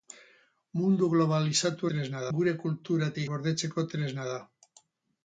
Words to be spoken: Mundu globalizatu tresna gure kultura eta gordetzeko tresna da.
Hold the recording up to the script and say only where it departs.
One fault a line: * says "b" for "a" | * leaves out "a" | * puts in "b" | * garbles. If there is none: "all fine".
all fine